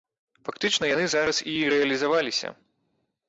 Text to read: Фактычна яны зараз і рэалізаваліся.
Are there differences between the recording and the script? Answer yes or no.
no